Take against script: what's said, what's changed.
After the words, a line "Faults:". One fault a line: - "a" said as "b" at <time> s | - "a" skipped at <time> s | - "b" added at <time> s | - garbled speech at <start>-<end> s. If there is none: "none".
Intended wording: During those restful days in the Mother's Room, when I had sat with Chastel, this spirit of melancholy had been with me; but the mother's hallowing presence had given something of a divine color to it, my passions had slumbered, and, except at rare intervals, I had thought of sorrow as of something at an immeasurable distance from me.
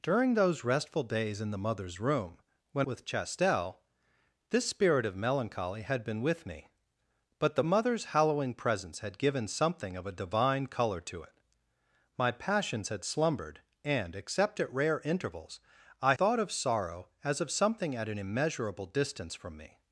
During those restful days in the Mother's Room, when with Chastel, this spirit of melancholy had been with me; but the mother's hallowing presence had given something of a divine color to it, my passions had slumbered, and, except at rare intervals, I thought of sorrow as of something at an immeasurable distance from me.
Faults:
- "I had sat" skipped at 2.9 s
- "had" skipped at 16.1 s